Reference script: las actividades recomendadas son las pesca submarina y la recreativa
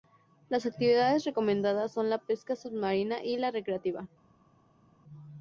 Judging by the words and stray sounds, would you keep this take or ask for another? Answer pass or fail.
fail